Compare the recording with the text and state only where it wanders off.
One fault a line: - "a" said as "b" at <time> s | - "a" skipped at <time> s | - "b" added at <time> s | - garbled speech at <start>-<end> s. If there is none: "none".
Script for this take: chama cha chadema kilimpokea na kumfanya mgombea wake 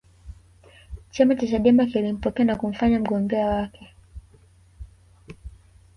none